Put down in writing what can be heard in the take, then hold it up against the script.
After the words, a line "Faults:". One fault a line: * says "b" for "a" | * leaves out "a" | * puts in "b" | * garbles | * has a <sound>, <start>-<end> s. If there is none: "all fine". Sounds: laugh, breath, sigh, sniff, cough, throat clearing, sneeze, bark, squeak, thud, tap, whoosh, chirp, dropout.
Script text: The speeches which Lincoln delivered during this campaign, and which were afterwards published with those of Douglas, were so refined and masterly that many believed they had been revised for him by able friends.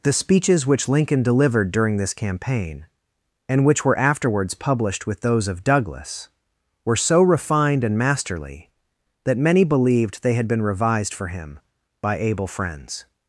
The speeches which Lincoln delivered during this campaign, and which were afterwards published with those of Douglas, were so refined and masterly that many believed they had been revised for him by able friends.
Faults:
all fine